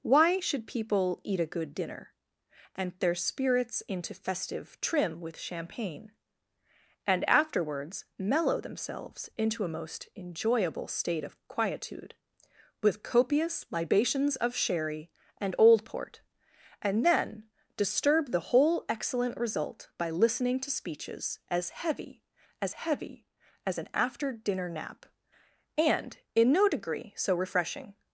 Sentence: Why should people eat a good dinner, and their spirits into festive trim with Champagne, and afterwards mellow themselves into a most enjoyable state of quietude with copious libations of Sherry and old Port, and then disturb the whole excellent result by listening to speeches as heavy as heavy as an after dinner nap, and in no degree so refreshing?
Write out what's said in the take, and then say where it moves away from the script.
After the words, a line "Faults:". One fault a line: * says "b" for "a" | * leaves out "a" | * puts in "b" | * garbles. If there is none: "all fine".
Why should people eat a good dinner, and their spirits into festive trim with Champagne, and afterwards mellow themselves into a most enjoyable state of quietude with copious libations of Sherry and old Port, and then disturb the whole excellent result by listening to speeches as heavy as heavy as an after dinner nap, and in no degree so refreshing?
Faults:
all fine